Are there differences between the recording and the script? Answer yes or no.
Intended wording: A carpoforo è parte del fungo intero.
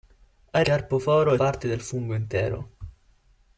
no